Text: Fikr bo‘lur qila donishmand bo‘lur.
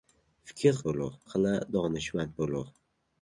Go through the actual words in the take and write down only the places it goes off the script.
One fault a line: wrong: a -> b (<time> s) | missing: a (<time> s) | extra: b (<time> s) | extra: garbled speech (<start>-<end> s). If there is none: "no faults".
no faults